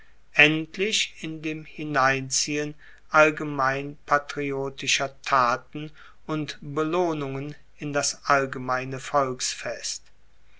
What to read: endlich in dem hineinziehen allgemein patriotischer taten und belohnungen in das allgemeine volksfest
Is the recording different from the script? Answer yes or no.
no